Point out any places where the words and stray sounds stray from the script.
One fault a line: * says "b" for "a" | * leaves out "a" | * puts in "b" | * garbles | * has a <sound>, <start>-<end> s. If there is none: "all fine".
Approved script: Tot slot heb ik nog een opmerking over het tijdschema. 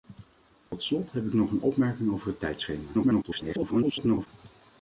* has a dropout, 0.7-0.7 s
* garbles